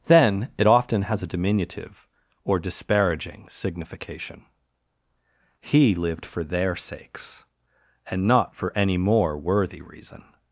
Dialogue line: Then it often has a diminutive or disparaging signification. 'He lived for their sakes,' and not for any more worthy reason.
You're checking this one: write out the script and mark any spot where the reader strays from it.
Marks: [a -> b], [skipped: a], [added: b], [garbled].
Then it often has a diminutive or disparaging signification. 'He lived for their sakes,' and not for any more worthy reason.